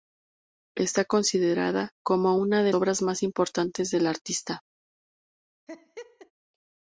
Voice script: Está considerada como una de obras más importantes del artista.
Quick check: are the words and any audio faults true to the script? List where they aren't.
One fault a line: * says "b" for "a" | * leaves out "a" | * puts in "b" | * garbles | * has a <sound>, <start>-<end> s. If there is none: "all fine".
* has a laugh, 5.7-6.3 s